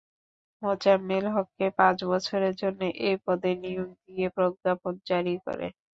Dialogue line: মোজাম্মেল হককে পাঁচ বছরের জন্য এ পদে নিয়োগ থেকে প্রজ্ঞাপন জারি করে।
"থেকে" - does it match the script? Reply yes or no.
no